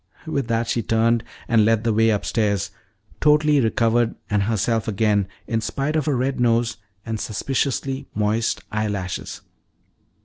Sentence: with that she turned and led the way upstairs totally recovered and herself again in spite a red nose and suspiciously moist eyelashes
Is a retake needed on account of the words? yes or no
yes